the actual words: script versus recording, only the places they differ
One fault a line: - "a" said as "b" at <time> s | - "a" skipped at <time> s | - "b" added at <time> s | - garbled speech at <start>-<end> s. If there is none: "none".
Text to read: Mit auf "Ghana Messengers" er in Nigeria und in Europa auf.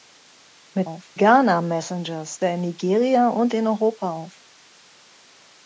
none